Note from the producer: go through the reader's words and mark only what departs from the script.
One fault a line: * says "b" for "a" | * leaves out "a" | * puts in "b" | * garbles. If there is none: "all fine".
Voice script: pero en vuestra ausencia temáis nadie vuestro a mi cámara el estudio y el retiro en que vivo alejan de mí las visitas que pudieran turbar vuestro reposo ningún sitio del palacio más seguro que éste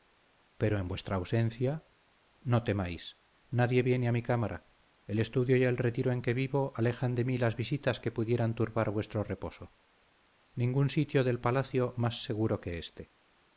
* puts in "no"
* says "viene" for "vuestro"